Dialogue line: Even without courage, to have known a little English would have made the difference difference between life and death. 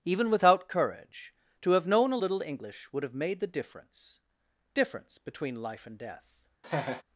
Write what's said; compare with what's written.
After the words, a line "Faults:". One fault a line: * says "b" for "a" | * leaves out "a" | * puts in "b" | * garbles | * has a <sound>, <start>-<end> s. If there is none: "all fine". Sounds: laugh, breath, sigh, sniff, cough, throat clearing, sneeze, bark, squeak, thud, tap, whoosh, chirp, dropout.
Even without courage, to have known a little English would have made the difference difference between life and death.
Faults:
* has a laugh, 6.6-7.0 s